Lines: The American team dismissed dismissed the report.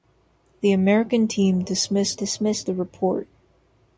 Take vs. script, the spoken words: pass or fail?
pass